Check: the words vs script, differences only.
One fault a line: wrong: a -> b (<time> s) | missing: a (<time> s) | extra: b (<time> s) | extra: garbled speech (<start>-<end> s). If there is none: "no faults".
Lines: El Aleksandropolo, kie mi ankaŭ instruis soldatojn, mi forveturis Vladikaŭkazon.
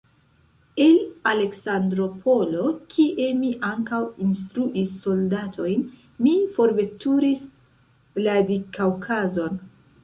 no faults